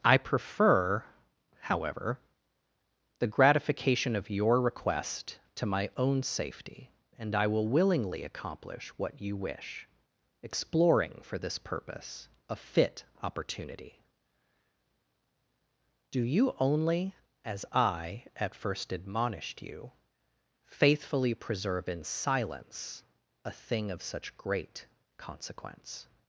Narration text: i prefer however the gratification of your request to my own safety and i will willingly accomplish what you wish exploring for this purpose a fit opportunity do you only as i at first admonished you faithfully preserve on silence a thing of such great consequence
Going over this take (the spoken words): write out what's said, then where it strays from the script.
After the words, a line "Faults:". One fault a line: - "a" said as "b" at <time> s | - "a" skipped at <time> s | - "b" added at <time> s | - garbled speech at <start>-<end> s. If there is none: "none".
i prefer however the gratification of your request to my own safety and i will willingly accomplish what you wish exploring for this purpose a fit opportunity do you only as i at first admonished you faithfully preserve in silence a thing of such great consequence
Faults:
- "on" said as "in" at 21.9 s